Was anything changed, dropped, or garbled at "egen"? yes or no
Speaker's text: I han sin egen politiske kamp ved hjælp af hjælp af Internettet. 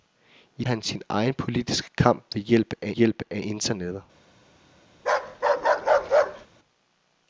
no